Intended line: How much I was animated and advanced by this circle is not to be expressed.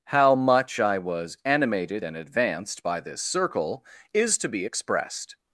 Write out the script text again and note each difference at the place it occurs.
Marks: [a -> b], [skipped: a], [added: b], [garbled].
How much I was animated and advanced by this circle is [skipped: not] to be expressed.